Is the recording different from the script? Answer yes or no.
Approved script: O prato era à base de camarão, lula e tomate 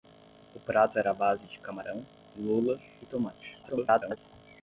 yes